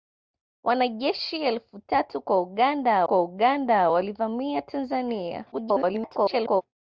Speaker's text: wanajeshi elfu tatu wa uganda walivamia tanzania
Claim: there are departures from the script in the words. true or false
true